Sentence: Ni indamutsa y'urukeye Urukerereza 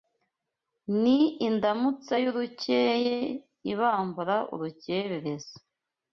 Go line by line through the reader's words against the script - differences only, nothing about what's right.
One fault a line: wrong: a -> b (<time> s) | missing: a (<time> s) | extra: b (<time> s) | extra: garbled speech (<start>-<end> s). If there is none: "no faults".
extra: Ibambura (3.7 s)